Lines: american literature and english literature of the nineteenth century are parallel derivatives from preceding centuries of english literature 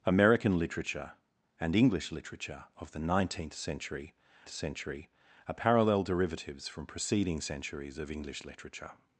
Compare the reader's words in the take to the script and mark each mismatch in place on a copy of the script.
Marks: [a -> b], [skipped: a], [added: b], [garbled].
american literature and english literature of the nineteenth century [added: century] are parallel derivatives from preceding centuries of english literature